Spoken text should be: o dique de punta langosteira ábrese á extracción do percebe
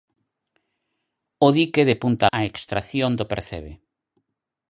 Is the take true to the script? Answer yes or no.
no